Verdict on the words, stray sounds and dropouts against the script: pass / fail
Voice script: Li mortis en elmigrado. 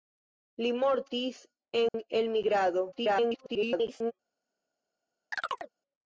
fail